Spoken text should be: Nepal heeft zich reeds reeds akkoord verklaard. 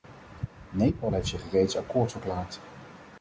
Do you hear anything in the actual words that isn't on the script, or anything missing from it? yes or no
yes